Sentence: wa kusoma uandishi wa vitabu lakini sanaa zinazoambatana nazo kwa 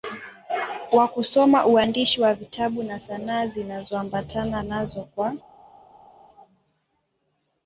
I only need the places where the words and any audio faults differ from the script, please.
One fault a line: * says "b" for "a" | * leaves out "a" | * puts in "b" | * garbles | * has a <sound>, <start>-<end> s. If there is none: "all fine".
* says "na" for "lakini"